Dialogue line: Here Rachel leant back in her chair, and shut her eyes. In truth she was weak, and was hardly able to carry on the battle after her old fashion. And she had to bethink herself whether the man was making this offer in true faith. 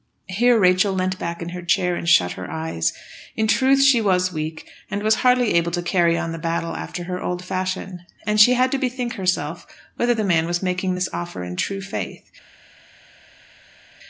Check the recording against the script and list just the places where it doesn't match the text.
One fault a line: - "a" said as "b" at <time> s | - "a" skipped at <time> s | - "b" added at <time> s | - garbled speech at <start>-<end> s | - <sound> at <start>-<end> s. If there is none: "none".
none